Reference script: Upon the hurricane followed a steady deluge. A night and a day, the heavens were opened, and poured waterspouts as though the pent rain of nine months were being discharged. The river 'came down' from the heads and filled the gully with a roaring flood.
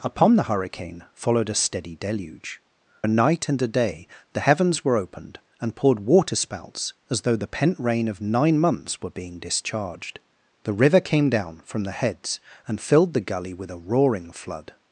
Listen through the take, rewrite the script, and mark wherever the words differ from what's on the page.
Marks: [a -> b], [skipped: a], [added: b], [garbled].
Upon the hurricane followed a steady deluge. A night and a day, the heavens were opened, and poured waterspouts as though the pent rain of nine months were being discharged. The river 'came down' from the heads and filled the gully with a roaring flood.